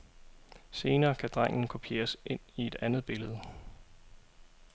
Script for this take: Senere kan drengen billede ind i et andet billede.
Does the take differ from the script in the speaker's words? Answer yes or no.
yes